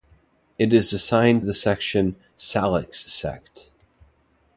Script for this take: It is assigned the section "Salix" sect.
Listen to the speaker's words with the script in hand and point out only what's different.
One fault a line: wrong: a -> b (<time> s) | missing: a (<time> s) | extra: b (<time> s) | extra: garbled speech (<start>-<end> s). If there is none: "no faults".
no faults